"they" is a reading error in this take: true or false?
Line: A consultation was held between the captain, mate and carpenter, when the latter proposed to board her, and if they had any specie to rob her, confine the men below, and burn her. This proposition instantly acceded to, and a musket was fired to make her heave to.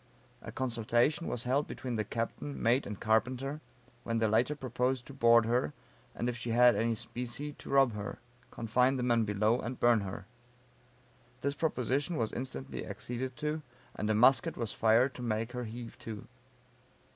true